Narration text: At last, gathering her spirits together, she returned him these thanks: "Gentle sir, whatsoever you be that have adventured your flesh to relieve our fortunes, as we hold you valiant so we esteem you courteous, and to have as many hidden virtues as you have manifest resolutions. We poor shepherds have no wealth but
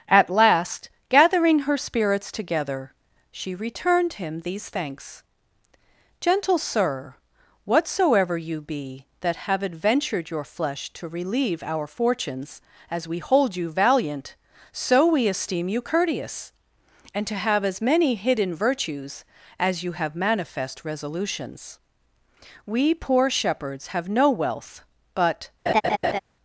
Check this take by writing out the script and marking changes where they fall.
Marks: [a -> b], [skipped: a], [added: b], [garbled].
At last, gathering her spirits together, she returned him these thanks: "Gentle sir, whatsoever you be that have adventured your flesh to relieve our fortunes, as we hold you valiant so we esteem you courteous, and to have as many hidden virtues as you have manifest resolutions. We poor shepherds have no wealth but